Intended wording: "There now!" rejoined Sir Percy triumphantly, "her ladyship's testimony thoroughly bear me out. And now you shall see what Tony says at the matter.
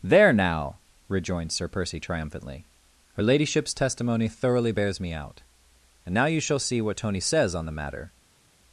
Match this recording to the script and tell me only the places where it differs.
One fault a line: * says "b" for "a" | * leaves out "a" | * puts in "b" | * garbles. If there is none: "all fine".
* says "bears" for "bear"
* says "on" for "at"